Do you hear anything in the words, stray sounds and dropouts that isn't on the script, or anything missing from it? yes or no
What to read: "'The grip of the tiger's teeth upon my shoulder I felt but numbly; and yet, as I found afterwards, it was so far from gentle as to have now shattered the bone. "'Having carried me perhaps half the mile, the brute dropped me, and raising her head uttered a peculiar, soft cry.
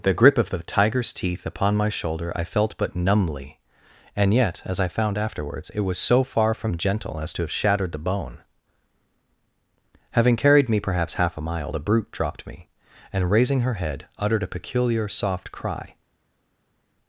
yes